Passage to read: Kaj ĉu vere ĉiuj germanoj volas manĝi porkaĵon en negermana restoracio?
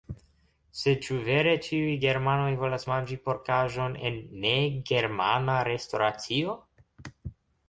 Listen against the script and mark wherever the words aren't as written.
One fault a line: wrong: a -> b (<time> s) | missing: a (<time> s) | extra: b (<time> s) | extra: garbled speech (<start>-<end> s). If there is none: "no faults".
wrong: Kaj -> Sed (0.8 s)